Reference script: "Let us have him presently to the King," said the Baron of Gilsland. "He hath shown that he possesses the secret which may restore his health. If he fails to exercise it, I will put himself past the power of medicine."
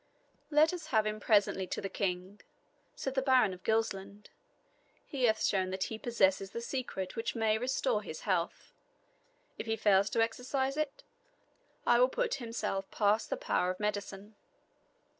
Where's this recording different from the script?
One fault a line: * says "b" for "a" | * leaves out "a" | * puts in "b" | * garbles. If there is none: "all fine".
all fine